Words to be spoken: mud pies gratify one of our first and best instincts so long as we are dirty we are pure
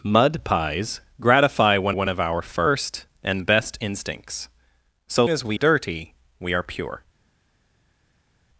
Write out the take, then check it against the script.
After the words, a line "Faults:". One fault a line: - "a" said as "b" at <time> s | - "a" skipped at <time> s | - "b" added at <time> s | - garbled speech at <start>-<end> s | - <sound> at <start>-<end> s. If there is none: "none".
mud pies gratify one one of our first and best instincts so as we dirty we are pure
Faults:
- "one" added at 1.9 s
- "long" skipped at 5.3 s
- "are" skipped at 5.6 s